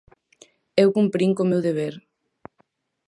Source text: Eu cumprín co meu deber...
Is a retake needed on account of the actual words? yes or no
no